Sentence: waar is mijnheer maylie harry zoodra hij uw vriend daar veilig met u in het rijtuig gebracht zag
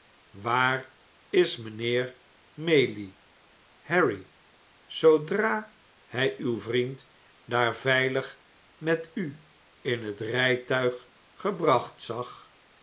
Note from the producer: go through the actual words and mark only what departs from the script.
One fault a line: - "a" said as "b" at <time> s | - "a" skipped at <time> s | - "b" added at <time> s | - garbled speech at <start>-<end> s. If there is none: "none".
none